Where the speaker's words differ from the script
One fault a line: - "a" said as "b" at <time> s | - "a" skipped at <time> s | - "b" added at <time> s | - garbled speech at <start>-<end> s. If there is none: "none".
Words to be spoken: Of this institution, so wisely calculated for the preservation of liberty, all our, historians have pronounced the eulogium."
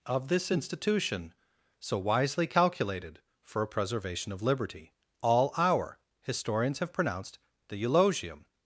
- "the" said as "a" at 3.6 s